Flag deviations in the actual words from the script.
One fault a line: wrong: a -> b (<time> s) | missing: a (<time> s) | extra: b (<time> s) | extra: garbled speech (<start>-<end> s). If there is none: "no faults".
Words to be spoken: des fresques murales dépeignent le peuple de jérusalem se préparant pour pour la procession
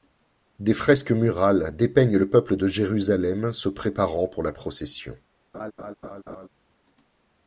missing: pour (4.4 s)